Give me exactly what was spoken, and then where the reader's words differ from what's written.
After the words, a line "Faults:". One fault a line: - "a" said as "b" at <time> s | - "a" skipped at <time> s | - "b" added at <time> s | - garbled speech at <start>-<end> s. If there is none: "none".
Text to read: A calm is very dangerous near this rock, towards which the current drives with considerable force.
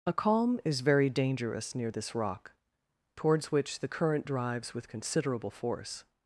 A calm is very dangerous near this rock, towards which the current drives with considerable force.
Faults:
none